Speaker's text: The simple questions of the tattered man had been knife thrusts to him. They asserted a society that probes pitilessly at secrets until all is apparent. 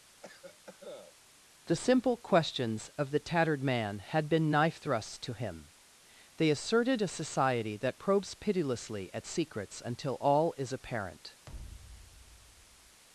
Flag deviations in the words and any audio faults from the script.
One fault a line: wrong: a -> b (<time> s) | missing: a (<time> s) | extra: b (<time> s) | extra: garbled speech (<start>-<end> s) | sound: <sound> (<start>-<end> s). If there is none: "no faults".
sound: cough (0.2-1.2 s)
sound: thud (11.5-13.0 s)